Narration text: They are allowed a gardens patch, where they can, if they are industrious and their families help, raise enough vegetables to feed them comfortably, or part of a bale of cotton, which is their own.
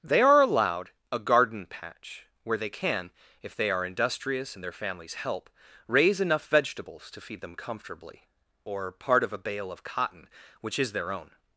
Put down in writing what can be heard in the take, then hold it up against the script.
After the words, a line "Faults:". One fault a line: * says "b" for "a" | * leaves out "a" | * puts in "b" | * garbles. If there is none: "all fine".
They are allowed a garden patch, where they can, if they are industrious and their families help, raise enough vegetables to feed them comfortably, or part of a bale of cotton, which is their own.
Faults:
* says "garden" for "gardens"